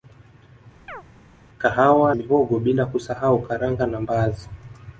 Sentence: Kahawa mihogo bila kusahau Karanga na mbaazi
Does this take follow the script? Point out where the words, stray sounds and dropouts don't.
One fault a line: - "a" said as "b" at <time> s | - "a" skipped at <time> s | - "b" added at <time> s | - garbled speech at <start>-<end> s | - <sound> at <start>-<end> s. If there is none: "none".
- chirp at 0.9-1.0 s